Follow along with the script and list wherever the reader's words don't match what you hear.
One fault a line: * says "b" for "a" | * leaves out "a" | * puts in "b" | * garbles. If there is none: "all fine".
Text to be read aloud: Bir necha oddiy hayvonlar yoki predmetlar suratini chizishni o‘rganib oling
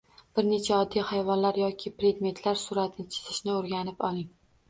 all fine